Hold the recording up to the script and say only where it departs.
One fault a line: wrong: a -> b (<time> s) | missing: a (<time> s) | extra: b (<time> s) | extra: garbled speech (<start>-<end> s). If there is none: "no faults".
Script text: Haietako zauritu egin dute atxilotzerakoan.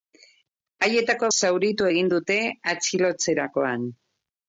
no faults